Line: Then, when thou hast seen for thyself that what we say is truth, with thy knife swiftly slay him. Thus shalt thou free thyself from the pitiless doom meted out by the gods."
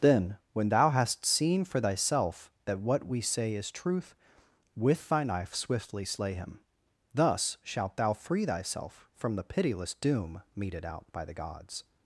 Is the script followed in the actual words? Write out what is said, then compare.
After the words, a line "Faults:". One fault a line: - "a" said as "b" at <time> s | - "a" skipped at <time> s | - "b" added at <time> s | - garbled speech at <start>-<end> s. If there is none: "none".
Then, when thou hast seen for thyself that what we say is truth, with thy knife swiftly slay him. Thus shalt thou free thyself from the pitiless doom meted out by the gods."
Faults:
none